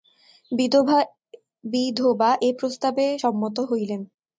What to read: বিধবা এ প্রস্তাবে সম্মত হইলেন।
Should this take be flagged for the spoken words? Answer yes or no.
no